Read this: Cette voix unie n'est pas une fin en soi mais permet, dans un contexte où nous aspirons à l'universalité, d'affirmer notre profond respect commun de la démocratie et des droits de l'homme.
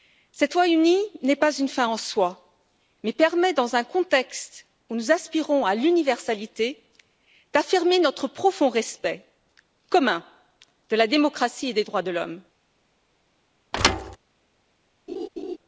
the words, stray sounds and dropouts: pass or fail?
fail